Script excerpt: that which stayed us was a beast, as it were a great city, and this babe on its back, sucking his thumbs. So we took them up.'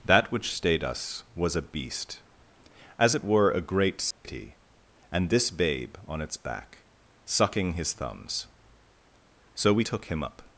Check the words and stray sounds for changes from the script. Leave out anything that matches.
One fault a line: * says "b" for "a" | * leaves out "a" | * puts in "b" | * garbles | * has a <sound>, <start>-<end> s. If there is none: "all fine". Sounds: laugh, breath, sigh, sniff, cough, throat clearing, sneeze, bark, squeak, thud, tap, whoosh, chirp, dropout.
* has a dropout, 4.1-4.2 s
* says "him" for "them"